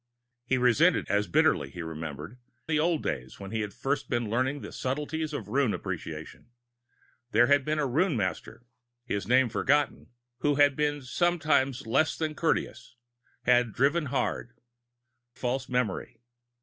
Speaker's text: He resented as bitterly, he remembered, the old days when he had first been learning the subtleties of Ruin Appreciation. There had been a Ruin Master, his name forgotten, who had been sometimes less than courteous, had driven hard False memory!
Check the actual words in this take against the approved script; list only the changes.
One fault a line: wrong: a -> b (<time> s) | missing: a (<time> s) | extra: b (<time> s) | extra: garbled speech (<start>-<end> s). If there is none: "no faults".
no faults